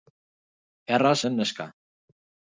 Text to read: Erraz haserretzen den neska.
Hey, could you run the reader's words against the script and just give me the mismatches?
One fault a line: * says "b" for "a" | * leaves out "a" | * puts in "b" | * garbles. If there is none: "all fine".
* leaves out "haserretzen"